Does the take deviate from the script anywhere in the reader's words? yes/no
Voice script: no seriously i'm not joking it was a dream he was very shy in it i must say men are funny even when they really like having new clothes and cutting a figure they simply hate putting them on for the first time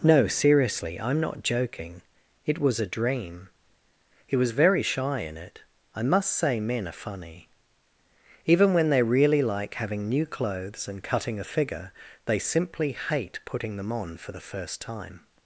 no